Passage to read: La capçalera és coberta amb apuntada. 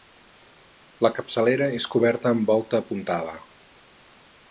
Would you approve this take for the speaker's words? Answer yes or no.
no